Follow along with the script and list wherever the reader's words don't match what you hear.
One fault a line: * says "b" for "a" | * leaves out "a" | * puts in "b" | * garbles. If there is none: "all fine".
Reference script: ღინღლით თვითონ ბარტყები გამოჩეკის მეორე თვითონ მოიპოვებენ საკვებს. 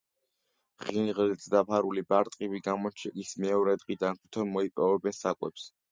* says "დაფარული" for "თვითონ"
* puts in "დღიდან"